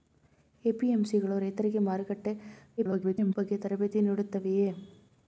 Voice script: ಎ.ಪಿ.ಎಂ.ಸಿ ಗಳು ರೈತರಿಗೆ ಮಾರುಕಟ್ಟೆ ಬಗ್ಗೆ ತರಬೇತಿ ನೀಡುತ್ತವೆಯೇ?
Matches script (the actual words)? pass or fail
fail